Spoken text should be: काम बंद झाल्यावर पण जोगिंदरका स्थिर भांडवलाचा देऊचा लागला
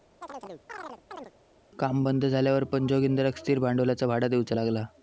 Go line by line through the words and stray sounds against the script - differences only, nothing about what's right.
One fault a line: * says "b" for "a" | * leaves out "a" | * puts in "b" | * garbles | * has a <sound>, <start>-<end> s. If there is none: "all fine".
* has a chirp, 0.2-1.3 s
* puts in "भाडा"